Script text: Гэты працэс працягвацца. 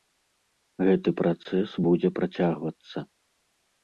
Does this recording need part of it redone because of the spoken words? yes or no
yes